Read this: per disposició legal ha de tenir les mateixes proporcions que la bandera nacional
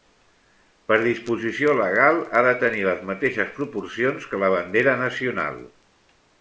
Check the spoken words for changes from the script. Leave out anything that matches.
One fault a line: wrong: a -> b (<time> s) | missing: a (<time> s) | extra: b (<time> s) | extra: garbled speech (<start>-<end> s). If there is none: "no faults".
no faults